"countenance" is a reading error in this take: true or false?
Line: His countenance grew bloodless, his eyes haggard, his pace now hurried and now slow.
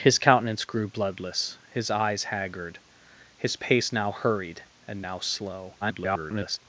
false